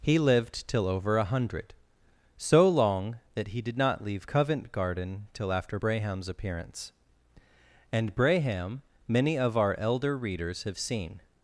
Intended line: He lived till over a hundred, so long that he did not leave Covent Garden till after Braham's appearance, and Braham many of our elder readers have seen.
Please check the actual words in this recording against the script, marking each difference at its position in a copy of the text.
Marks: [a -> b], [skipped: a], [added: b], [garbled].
He lived till over a hundred, so long that he did not leave Covent Garden till after Braham's appearance, and Braham many of our elder readers have seen.